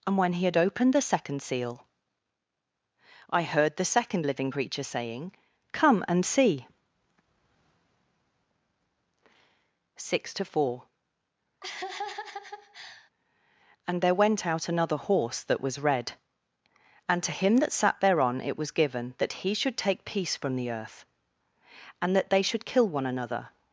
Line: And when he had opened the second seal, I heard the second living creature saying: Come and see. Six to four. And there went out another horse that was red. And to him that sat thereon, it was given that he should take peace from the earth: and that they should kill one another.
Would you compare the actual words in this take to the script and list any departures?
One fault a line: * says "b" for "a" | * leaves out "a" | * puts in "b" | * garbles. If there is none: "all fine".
all fine